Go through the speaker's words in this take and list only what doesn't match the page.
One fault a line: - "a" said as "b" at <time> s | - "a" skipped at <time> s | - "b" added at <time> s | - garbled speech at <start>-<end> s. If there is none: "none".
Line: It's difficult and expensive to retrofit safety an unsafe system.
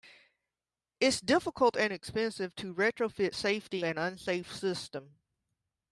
none